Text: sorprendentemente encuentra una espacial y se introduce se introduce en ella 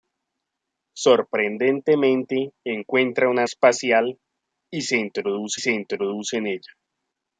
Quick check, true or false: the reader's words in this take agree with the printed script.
true